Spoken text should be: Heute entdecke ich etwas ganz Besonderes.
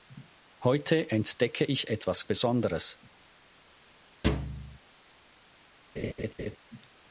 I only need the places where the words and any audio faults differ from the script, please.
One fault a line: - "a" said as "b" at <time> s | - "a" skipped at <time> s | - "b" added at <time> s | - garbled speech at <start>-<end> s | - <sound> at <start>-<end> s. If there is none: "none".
- "ganz" skipped at 2.2 s
- thud at 4.2-4.8 s
- laugh at 6.0-6.6 s